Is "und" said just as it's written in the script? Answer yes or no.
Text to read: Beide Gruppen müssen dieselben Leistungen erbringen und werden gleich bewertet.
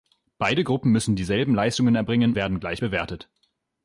no